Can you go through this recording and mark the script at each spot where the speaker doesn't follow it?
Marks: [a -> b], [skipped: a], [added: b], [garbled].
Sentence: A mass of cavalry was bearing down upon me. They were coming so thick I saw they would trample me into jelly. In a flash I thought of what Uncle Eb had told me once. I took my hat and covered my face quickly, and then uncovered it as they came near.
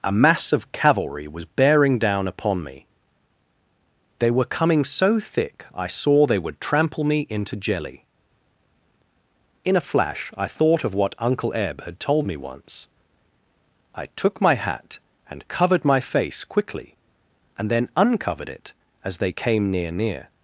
A mass of cavalry was bearing down upon me. They were coming so thick I saw they would trample me into jelly. In a flash I thought of what Uncle Eb had told me once. I took my hat and covered my face quickly, and then uncovered it as they came near. [added: near]